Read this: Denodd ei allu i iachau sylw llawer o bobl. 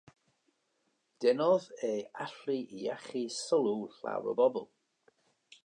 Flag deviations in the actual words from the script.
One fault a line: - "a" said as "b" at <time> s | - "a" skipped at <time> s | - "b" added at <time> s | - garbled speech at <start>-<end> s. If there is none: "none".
none